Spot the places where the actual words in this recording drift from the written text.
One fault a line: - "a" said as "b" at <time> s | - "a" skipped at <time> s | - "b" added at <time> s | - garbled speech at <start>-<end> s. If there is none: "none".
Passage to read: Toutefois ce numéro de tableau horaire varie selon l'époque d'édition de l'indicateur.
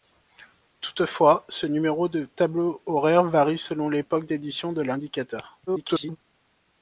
- garbled speech at 5.7-6.2 s